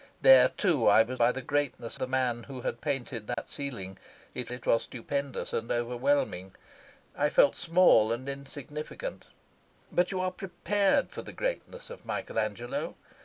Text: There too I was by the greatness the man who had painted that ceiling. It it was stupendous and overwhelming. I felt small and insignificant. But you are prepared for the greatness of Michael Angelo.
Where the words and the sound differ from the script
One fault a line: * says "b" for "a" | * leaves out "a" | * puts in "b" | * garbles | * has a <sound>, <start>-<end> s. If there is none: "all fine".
* has a dropout, 3.3-3.4 s